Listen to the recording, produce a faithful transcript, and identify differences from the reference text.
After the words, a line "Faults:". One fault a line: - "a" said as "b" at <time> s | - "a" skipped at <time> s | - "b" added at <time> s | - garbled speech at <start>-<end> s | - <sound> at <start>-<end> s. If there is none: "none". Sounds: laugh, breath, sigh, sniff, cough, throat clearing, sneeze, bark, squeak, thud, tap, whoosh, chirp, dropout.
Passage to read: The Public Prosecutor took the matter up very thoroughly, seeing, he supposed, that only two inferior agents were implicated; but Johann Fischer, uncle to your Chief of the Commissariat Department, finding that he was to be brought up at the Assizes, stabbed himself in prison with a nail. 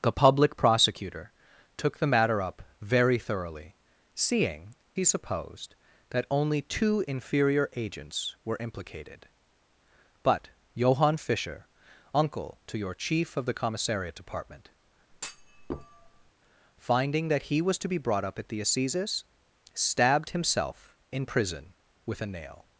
The Public Prosecutor took the matter up very thoroughly, seeing, he supposed, that only two inferior agents were implicated; but Johann Fischer, uncle to your Chief of the Commissariat Department, finding that he was to be brought up at the Assizes, stabbed himself in prison with a nail.
Faults:
- thud at 15.1-16.3 s